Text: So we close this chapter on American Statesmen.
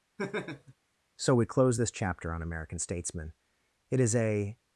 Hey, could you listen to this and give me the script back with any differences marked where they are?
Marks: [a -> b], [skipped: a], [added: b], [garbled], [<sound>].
[laugh] So we close this chapter on American Statesmen. [added: It is a]